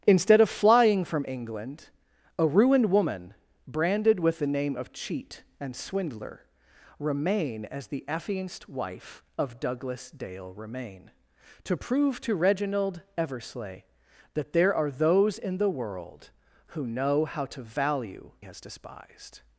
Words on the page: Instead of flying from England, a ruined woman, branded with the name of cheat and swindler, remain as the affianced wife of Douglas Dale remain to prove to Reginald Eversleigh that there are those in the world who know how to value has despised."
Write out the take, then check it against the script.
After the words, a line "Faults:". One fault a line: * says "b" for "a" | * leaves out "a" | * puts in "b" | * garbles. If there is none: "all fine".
Instead of flying from England, a ruined woman, branded with the name of cheat and swindler, remain as the affianced wife of Douglas Dale remain to prove to Reginald Eversleigh that there are those in the world who know how to value has despised."
Faults:
all fine